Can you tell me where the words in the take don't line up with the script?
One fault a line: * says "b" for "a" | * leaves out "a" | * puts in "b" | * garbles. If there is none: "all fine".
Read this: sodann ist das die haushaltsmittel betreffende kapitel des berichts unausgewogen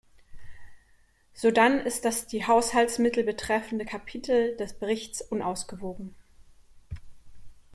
all fine